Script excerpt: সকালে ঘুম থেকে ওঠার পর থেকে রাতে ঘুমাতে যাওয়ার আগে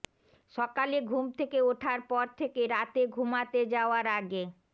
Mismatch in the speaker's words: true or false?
false